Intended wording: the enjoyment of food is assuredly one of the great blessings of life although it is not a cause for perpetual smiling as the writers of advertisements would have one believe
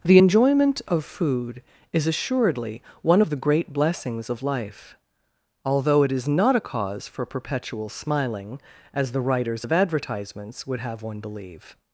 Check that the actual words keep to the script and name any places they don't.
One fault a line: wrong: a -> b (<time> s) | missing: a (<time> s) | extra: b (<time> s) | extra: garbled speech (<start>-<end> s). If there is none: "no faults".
no faults